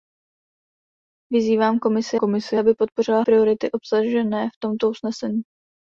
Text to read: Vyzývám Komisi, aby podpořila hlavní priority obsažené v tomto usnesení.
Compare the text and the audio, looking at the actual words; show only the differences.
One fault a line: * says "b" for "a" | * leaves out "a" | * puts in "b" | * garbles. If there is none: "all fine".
* puts in "Komisi"
* leaves out "hlavní"